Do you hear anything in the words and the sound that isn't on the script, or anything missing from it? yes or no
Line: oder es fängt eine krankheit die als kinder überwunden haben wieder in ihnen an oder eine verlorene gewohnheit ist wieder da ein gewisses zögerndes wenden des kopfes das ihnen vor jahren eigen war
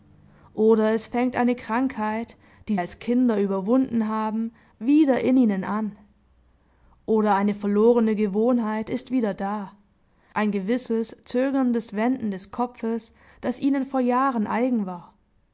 no